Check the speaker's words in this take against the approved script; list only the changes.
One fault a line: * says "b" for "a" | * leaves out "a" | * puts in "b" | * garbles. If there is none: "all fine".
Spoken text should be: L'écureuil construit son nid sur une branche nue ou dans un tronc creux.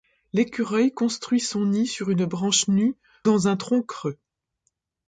* leaves out "ou"